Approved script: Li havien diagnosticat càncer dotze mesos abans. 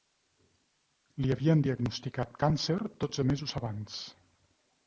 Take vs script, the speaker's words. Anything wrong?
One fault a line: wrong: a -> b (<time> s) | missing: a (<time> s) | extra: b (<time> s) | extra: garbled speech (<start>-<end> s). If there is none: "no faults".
no faults